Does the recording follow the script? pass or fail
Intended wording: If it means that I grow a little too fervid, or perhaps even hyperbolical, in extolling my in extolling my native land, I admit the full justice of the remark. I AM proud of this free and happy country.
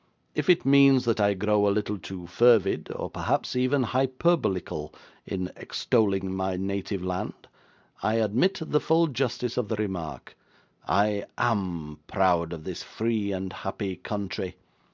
fail